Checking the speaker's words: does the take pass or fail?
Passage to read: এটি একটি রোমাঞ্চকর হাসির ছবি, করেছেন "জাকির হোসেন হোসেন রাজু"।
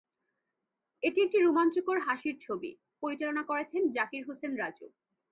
fail